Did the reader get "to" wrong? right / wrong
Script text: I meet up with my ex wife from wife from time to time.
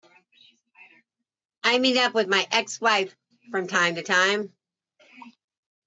right